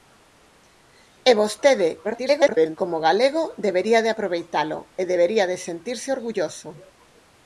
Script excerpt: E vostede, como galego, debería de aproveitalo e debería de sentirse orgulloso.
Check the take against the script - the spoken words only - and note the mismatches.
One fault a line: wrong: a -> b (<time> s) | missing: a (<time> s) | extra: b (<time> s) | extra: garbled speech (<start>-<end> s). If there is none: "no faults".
extra: garbled speech (2.0-2.8 s)